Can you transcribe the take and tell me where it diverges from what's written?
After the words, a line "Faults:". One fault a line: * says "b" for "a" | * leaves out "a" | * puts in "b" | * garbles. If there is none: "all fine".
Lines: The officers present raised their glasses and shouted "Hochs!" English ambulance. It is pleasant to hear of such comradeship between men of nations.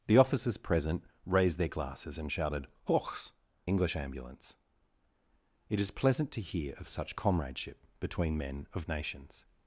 The officers present raised their glasses and shouted "Hochs!" English ambulance. It is pleasant to hear of such comradeship between men of nations.
Faults:
all fine